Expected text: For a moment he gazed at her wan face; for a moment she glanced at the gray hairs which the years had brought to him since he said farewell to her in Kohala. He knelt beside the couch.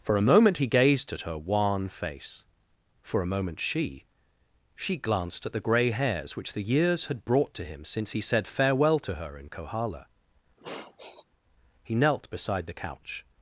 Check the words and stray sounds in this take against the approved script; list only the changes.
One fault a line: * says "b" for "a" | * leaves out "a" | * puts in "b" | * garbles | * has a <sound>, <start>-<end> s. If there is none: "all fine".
* puts in "she"
* has a sniff, 10.6-11.3 s